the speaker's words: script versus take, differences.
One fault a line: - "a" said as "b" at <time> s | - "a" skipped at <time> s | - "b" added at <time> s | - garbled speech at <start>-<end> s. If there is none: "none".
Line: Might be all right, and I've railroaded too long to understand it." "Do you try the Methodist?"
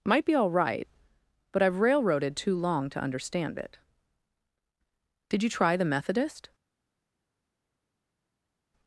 - "and" said as "but" at 1.5 s
- "Do" said as "Did" at 5.3 s